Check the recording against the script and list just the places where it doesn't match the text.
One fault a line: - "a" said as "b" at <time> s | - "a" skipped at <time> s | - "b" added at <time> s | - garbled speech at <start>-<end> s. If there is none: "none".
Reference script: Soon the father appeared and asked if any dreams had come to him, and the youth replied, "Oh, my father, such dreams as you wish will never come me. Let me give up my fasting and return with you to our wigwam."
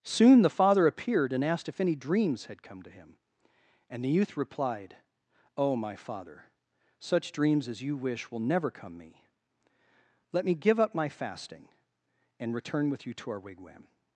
none